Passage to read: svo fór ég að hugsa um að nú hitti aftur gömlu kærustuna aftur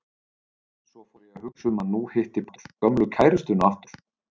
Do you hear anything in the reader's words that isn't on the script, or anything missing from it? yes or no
no